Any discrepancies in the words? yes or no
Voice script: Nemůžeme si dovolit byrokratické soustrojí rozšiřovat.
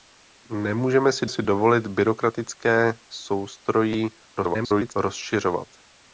yes